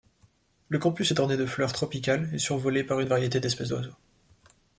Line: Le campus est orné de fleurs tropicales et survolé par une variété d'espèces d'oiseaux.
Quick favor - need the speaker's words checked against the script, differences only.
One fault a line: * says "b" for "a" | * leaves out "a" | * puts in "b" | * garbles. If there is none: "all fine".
all fine